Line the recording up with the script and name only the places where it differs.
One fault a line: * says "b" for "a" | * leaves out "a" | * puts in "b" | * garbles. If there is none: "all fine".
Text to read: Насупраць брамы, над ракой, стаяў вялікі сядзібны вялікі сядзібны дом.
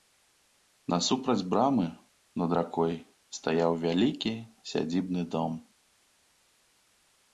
* leaves out "вялікі сядзібны"